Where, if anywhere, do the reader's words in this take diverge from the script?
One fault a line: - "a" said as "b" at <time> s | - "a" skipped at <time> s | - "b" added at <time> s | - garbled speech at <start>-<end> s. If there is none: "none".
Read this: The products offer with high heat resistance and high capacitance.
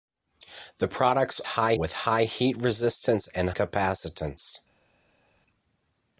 - "offer" said as "high" at 1.4 s
- "high" skipped at 3.5 s